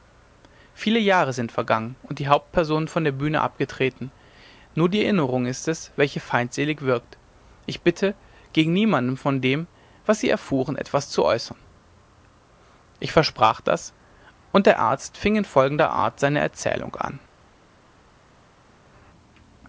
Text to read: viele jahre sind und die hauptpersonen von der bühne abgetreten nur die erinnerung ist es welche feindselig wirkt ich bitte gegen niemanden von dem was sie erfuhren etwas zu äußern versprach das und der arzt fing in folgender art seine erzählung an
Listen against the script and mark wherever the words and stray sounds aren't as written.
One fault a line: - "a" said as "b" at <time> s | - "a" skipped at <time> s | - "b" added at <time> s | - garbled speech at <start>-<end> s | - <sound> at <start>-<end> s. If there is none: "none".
- "vergangen" added at 1.5 s
- "ich" added at 13.0 s